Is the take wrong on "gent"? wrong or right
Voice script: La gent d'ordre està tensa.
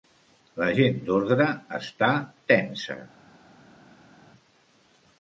right